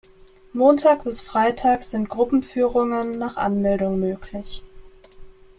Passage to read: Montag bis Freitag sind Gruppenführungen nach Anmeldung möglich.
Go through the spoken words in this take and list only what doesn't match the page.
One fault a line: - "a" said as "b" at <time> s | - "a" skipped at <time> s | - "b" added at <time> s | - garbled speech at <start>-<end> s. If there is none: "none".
none